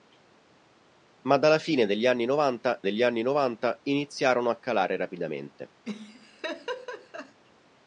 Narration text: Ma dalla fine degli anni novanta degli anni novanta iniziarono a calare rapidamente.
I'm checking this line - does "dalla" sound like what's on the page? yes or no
yes